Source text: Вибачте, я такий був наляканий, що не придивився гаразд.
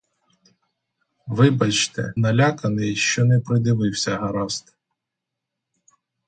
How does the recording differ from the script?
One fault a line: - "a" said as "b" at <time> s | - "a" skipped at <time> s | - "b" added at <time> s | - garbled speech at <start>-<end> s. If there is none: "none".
- "я такий був" skipped at 2.1 s